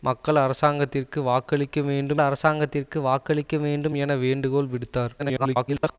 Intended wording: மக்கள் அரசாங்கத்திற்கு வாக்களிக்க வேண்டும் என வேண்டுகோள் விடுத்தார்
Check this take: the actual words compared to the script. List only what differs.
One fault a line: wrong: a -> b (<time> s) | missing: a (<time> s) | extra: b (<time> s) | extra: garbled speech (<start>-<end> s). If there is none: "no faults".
extra: அரசாங்கத்திற்கு வாக்களிக்க வேண்டும் (2.2 s)
extra: garbled speech (5.2-6.0 s)